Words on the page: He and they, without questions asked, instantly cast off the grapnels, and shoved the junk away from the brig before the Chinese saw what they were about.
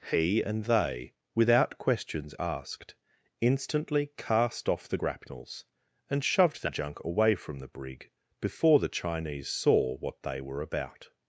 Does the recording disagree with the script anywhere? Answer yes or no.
no